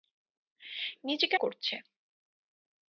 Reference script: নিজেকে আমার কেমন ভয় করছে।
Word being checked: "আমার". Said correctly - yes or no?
no